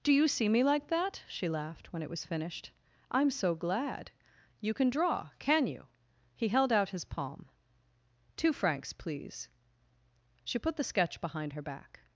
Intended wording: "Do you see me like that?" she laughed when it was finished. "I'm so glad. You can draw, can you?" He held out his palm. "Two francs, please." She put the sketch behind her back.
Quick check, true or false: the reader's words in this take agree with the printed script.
true